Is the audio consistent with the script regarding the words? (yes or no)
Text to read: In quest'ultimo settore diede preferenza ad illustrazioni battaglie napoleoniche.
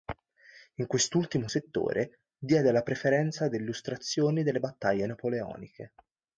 no